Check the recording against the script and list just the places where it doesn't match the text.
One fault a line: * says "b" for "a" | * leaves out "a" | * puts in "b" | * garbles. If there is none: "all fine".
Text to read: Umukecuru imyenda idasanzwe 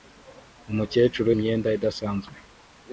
all fine